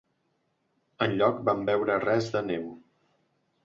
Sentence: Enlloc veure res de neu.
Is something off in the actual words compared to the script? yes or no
yes